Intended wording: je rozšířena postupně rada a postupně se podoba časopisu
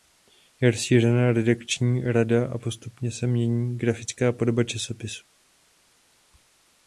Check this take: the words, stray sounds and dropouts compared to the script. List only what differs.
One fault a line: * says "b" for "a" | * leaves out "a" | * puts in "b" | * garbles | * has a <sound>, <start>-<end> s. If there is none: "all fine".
* says "redakční" for "postupně"
* puts in "mění grafická"